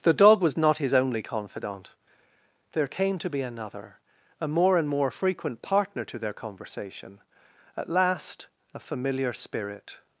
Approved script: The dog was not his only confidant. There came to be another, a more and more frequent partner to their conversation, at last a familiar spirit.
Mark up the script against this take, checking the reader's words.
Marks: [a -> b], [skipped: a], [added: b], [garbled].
The dog was not his only confidant. There came to be another, a more and more frequent partner to their conversation, at last a familiar spirit.